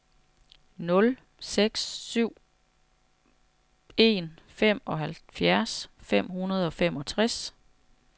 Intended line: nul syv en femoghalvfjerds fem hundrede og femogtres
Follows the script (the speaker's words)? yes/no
no